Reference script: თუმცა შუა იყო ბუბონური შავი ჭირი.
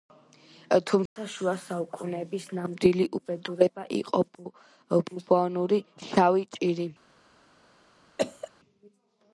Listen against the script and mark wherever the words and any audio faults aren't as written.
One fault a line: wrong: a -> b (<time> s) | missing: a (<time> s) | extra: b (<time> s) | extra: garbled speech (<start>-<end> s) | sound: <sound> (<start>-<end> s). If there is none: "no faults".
sound: dropout (1.1-1.2 s)
extra: საუკუნეების ნამდვილი უბედურება (1.6 s)
sound: cough (8.2-8.5 s)